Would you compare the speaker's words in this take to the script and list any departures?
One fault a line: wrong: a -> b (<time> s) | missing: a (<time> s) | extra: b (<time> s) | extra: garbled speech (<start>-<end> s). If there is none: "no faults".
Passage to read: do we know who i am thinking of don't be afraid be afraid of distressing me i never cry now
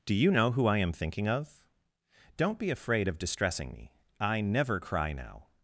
wrong: we -> you (0.1 s)
missing: be afraid (3.1 s)